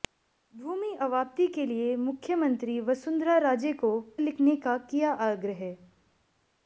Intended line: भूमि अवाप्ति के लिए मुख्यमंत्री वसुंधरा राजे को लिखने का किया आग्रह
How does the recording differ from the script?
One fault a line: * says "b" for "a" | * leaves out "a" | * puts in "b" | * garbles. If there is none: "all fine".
all fine